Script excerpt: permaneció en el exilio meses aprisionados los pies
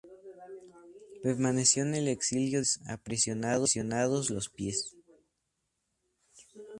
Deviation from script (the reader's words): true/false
false